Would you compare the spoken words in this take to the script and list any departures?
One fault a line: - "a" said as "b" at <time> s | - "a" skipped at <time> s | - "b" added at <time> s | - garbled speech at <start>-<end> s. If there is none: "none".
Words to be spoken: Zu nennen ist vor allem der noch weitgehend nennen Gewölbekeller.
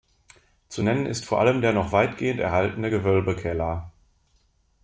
- "nennen" said as "erhaltene" at 2.4 s